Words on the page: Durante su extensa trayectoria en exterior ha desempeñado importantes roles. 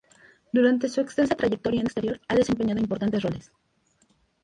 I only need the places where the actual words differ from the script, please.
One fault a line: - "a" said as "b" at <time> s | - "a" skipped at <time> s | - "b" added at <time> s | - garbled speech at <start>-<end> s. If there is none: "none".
none